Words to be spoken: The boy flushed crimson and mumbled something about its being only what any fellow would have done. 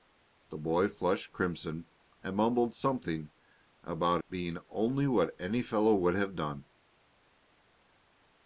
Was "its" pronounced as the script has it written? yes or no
no